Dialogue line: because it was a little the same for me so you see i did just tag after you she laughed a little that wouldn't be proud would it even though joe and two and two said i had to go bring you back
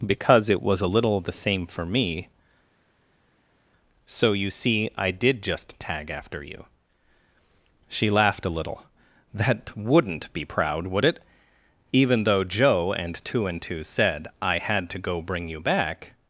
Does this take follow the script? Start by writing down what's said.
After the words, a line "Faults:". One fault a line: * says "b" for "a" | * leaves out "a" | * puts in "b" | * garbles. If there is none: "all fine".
because it was a little the same for me so you see i did just tag after you she laughed a little that wouldn't be proud would it even though joe and two and two said i had to go bring you back
Faults:
all fine